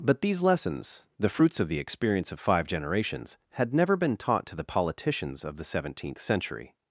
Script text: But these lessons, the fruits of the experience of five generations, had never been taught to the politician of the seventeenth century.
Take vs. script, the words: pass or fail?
fail